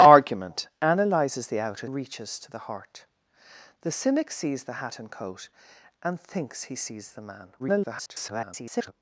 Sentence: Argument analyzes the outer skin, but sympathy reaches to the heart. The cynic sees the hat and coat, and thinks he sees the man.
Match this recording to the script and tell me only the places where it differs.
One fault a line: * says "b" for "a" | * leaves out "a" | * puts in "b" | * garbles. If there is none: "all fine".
* leaves out "skin but sympathy"
* garbles